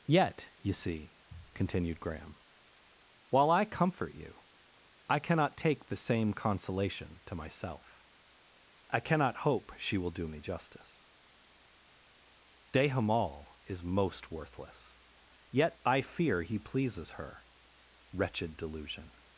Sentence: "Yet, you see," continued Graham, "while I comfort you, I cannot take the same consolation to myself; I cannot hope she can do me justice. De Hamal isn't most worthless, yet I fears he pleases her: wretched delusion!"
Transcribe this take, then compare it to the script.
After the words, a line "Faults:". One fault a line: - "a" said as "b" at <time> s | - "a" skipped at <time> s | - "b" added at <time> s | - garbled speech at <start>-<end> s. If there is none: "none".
"Yet, you see," continued Graham, "while I comfort you, I cannot take the same consolation to myself; I cannot hope she will do me justice. De Hamal is most worthless, yet I fear he pleases her: wretched delusion!"
Faults:
- "can" said as "will" at 10.0 s
- "isn't" said as "is" at 13.7 s
- "fears" said as "fear" at 16.0 s